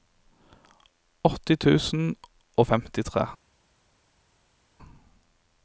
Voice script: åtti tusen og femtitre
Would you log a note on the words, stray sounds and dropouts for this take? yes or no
no